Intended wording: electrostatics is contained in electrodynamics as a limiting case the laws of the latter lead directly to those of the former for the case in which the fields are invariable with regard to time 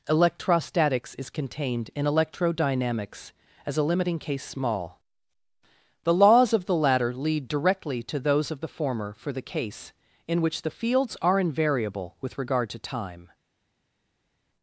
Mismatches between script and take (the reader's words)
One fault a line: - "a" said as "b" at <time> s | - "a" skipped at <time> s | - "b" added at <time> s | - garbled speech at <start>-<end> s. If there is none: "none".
- "small" added at 4.4 s